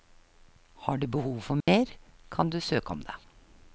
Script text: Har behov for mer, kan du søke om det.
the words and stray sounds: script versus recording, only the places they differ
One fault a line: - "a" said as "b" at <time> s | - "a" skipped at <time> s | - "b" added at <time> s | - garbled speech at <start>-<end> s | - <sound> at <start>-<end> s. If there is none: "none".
- "du" added at 1.0 s
- dropout at 1.6-1.7 s